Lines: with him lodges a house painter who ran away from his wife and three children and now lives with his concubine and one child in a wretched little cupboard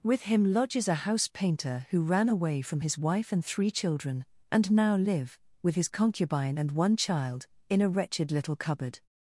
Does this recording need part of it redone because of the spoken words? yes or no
yes